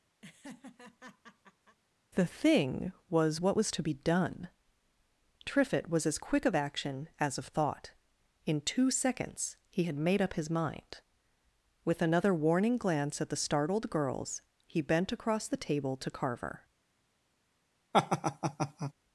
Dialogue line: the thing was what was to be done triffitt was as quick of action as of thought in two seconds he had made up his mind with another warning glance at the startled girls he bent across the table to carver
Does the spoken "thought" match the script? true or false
true